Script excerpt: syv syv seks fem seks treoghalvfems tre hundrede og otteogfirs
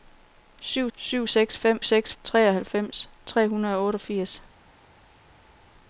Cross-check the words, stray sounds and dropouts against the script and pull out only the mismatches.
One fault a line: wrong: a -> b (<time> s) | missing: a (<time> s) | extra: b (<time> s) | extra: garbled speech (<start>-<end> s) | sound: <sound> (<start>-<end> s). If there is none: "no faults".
no faults